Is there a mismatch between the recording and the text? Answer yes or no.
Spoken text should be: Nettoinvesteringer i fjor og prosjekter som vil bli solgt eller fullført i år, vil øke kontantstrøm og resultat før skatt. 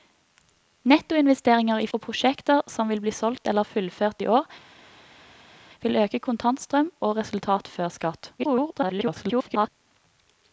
yes